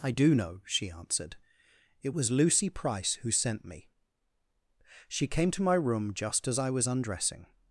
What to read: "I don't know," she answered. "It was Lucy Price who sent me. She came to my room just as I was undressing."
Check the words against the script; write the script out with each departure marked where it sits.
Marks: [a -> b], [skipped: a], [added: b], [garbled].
"I [don't -> do] know," she answered. "It was Lucy Price who sent me. She came to my room just as I was undressing."